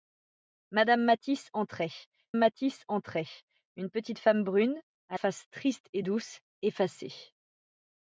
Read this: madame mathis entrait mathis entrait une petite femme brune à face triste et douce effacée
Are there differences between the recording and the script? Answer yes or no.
no